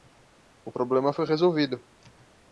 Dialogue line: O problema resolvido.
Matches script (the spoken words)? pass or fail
fail